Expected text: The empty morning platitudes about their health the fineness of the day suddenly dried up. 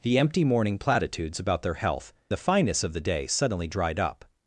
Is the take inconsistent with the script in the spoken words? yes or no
no